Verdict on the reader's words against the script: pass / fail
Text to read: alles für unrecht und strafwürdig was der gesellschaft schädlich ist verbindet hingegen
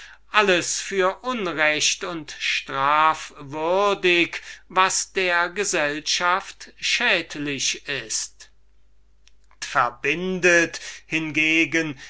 pass